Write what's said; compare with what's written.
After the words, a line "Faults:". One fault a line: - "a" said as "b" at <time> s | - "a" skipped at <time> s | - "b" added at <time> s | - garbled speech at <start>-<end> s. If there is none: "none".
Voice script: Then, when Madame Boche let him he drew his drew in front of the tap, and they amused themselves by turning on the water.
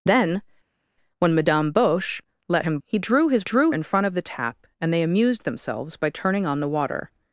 Then, when Madame Boche let him he drew his drew in front of the tap, and they amused themselves by turning on the water.
Faults:
none